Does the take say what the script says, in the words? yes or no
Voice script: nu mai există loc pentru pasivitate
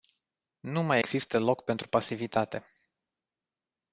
yes